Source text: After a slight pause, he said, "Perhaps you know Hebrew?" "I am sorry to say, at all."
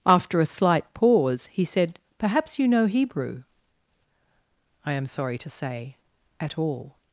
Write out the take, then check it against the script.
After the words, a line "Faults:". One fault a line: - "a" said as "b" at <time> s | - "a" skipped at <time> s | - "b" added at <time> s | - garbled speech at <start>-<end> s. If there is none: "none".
After a slight pause, he said, "Perhaps you know Hebrew?" "I am sorry to say, at all."
Faults:
none